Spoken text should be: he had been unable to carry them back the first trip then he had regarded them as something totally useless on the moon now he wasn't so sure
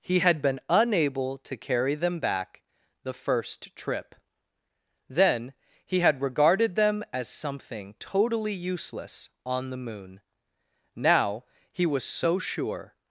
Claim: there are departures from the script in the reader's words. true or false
true